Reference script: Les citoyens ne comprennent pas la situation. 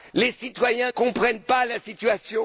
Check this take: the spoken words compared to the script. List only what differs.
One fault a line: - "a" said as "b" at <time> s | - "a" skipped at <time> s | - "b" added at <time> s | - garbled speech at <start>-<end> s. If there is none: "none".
- "ne" skipped at 0.9 s